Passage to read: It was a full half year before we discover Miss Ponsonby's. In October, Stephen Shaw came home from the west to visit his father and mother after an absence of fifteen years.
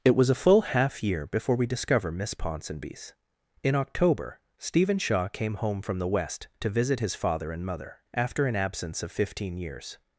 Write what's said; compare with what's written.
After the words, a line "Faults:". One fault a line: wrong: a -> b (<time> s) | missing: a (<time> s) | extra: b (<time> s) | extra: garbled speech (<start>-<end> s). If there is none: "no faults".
It was a full half year before we discover Miss Ponsonby's. In October, Stephen Shaw came home from the west to visit his father and mother after an absence of fifteen years.
Faults:
no faults